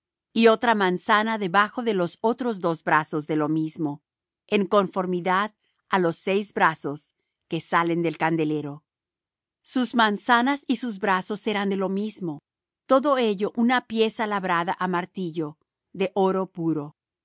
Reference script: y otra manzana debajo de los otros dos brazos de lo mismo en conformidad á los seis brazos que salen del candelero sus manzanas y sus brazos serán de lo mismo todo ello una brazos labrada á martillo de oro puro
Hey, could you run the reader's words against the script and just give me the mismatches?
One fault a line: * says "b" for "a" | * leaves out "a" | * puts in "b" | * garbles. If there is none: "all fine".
* says "pieza" for "brazos"